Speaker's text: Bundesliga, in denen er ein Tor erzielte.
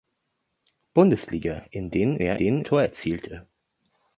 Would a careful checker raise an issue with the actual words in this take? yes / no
yes